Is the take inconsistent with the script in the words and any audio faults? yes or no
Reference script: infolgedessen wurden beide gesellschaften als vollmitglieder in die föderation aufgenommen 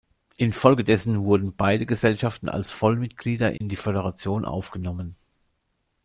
yes